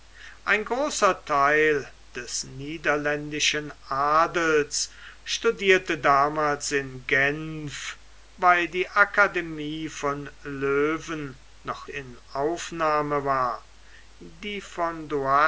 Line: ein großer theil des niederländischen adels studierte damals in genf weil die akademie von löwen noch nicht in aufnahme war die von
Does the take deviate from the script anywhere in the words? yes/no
yes